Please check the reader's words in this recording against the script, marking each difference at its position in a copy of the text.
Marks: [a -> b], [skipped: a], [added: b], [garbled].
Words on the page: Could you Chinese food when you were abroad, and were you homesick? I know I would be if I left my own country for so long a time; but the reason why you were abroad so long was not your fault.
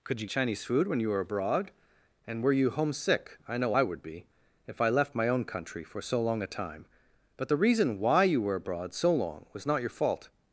Could you Chinese food when you were abroad, and were you homesick? I know I would be if I left my own country for so long a time; but the reason why you were abroad so long was not your fault.